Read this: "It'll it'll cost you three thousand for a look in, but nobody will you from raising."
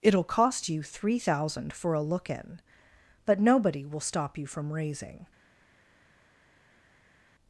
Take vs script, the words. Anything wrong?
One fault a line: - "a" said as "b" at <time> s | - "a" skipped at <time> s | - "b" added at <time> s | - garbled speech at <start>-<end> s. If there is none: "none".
- "it'll" skipped at 0.2 s
- "stop" added at 4.0 s